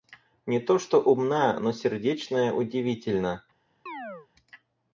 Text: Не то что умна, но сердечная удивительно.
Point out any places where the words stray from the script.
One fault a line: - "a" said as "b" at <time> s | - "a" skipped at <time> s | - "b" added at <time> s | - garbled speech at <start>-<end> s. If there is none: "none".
none